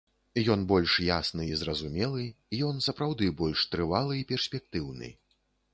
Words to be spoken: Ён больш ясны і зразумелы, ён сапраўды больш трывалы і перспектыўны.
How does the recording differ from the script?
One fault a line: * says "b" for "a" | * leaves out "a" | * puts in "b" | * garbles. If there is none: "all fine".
all fine